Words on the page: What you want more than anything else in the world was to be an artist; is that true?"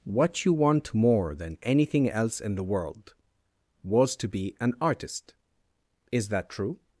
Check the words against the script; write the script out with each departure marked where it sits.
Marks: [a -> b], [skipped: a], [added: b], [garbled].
What you want more than anything else in the world was to be an artist; is that true?"